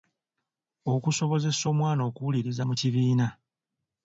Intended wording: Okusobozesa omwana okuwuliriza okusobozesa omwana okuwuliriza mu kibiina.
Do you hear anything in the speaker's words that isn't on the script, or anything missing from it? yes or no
yes